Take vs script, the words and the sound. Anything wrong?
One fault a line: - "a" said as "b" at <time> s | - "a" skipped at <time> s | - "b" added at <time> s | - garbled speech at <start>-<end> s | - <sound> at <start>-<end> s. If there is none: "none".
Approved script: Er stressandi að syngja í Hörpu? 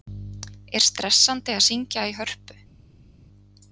none